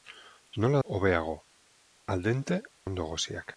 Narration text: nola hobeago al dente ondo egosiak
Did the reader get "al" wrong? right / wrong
right